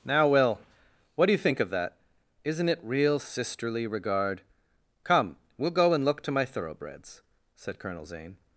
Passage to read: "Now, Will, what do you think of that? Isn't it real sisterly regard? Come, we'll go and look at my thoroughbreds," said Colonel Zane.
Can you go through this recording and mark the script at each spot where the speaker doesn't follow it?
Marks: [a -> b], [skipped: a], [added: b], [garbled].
"Now, Will, what do you think of that? Isn't it real sisterly regard? Come, we'll go and look [at -> to] my thoroughbreds," said Colonel Zane.